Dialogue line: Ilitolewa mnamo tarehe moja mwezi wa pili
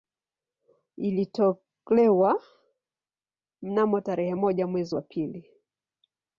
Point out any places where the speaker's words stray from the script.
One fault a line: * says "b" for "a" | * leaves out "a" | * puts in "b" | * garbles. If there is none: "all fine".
all fine